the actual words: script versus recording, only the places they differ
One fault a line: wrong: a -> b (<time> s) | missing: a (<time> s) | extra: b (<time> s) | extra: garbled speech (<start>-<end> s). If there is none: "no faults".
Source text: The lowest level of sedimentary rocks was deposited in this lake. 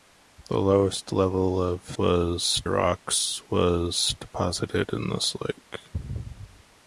wrong: sedimentary -> was (2.0 s)